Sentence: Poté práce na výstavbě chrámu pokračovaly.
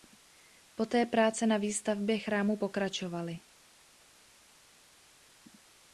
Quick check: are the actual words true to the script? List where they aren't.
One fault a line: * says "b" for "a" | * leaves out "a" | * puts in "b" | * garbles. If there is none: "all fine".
all fine